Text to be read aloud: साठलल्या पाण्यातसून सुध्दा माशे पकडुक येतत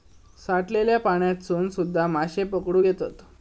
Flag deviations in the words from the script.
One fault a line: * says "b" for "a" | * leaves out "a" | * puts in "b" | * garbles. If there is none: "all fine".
all fine